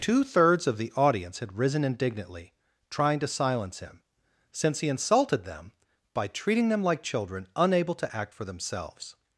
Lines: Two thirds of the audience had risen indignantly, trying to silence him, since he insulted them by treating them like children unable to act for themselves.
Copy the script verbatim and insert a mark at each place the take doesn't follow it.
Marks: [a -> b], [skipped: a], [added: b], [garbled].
Two thirds of the audience had risen indignantly, trying to silence him, since he insulted them by treating them like children unable to act for themselves.